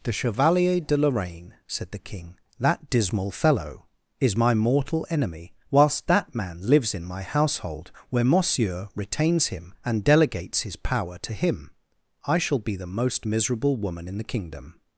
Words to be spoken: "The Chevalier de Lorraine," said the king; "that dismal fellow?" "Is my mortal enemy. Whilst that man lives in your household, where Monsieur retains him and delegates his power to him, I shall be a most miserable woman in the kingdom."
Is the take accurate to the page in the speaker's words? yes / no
no